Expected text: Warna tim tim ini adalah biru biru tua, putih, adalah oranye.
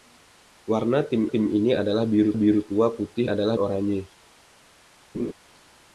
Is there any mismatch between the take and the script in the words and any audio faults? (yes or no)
yes